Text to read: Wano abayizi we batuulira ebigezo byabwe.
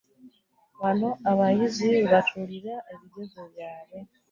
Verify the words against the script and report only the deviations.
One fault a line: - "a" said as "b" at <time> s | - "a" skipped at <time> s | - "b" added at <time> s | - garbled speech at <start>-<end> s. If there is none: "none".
none